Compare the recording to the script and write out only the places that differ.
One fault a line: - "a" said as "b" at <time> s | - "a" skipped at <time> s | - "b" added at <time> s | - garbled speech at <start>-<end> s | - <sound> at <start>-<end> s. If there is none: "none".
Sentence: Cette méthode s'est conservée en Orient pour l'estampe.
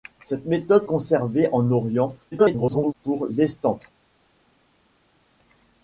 - "s'est" skipped at 0.9 s
- garbled speech at 2.3-2.9 s